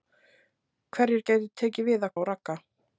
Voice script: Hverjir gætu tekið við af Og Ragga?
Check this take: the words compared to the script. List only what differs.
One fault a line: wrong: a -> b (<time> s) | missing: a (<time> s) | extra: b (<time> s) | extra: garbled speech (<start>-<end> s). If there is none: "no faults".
no faults